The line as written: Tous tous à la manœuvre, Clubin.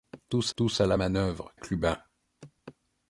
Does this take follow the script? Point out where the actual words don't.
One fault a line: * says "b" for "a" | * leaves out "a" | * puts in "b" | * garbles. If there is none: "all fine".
all fine